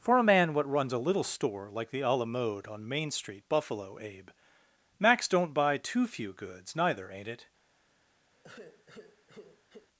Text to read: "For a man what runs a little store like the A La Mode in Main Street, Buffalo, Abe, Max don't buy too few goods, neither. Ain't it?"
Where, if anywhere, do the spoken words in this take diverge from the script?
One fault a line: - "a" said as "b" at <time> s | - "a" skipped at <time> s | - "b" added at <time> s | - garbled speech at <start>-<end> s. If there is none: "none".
- "in" said as "on" at 2.7 s